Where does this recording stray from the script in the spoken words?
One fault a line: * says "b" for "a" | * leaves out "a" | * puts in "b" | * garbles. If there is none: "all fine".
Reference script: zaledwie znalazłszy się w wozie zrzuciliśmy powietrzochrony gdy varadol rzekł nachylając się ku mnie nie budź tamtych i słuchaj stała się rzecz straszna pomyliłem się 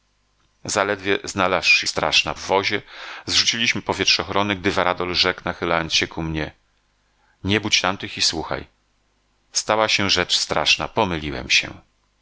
* says "straszna" for "się"